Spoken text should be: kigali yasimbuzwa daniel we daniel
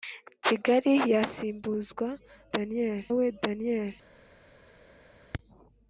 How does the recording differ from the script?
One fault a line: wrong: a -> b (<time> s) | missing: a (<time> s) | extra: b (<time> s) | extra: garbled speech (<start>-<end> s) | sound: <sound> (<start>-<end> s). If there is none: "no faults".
no faults